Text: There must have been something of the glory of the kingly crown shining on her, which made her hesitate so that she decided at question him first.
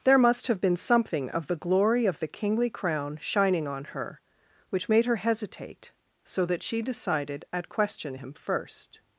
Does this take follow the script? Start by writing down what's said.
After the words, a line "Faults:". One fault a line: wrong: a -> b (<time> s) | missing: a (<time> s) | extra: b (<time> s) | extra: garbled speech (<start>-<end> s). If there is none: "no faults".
There must have been something of the glory of the kingly crown shining on her, which made her hesitate so that she decided at question him first.
Faults:
no faults